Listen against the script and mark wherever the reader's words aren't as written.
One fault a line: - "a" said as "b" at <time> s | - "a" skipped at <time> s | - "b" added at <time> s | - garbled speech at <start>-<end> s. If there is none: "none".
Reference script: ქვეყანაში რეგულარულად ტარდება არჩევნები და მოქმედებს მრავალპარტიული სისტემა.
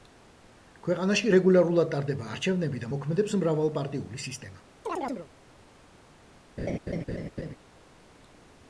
none